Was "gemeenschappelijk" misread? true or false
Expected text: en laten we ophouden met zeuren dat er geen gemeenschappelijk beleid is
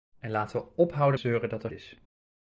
true